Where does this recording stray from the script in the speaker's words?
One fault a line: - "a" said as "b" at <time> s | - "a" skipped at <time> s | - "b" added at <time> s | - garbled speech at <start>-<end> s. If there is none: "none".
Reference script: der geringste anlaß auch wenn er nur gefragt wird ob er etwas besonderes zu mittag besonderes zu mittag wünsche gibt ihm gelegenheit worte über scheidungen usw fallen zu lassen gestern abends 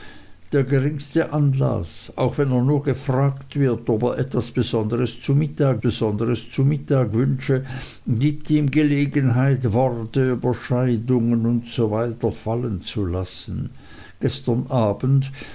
none